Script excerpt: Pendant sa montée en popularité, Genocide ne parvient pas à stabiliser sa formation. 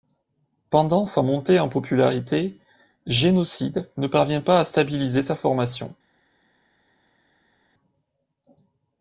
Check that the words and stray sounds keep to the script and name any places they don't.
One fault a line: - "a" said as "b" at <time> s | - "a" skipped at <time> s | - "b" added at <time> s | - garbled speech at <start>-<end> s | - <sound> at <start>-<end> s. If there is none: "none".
none